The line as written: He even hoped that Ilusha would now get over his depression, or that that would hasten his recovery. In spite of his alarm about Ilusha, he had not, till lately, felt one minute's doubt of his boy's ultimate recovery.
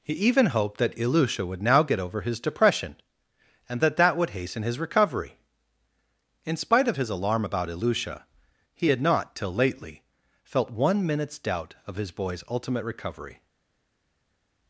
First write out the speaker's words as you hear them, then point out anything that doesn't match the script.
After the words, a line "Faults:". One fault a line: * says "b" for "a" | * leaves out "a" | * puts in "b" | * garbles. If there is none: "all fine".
He even hoped that Ilusha would now get over his depression, and that that would hasten his recovery. In spite of his alarm about Ilusha, he had not, till lately, felt one minute's doubt of his boy's ultimate recovery.
Faults:
* says "and" for "or"